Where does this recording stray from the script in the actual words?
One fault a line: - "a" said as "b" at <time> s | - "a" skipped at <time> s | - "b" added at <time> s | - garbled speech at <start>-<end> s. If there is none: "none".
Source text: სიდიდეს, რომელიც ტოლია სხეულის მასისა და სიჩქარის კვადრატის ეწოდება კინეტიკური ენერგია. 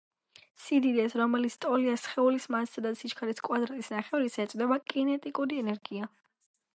- "ნახევრისა" added at 4.0 s